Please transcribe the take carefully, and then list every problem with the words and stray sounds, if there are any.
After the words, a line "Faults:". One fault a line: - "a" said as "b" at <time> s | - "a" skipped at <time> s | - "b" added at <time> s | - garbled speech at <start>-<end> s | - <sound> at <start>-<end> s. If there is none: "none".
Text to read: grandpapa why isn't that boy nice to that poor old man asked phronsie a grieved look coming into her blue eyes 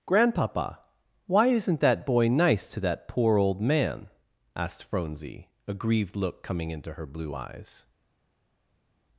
grandpapa why isn't that boy nice to that poor old man asked phronsie a grieved look coming into her blue eyes
Faults:
none